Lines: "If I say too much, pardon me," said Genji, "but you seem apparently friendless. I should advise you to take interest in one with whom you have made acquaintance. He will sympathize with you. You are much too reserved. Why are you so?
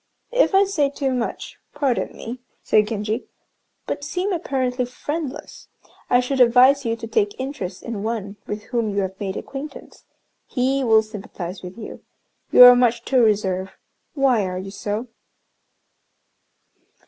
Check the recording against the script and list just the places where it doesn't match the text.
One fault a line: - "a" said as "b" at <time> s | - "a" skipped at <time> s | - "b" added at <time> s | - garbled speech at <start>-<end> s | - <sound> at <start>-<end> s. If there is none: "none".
- "you" skipped at 4.0 s